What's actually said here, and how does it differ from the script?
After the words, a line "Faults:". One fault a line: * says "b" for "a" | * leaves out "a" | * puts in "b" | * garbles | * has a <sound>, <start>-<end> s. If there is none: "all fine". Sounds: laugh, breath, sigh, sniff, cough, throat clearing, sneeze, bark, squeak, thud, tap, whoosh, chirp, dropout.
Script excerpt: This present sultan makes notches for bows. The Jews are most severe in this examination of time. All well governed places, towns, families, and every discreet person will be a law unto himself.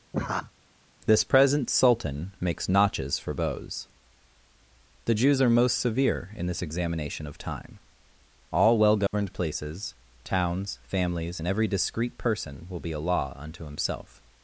This present sultan makes notches for bows. The Jews are most severe in this examination of time. All well governed places, towns, families, and every discreet person will be a law unto himself.
Faults:
* has a laugh, 0.1-0.5 s
* has a dropout, 9.1-9.1 s